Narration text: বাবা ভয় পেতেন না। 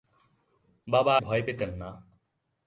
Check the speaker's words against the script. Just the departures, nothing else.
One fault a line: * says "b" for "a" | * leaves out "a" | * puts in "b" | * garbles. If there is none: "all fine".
all fine